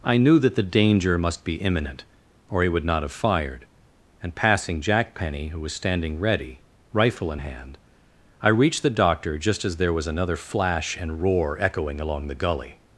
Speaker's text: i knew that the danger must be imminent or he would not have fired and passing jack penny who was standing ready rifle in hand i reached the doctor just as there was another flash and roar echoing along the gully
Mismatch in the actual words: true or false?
false